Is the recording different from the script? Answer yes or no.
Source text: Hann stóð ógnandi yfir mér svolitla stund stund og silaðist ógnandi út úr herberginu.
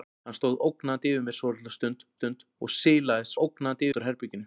no